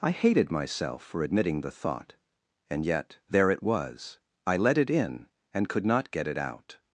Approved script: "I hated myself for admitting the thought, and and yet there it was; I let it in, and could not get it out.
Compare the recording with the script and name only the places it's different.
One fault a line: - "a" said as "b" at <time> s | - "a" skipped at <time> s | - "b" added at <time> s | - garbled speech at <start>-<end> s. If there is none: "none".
- "and" skipped at 2.9 s